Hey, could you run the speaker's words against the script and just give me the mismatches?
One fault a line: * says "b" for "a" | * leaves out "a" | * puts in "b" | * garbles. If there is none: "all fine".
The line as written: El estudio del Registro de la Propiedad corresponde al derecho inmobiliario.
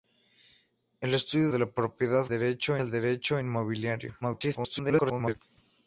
* leaves out "del Registro"
* says "derecho" for "corresponde"
* garbles